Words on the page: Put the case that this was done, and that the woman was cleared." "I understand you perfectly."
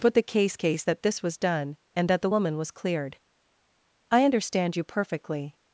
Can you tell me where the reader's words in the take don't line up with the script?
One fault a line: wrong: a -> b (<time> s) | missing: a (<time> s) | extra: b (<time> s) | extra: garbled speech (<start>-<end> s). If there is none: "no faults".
extra: case (0.6 s)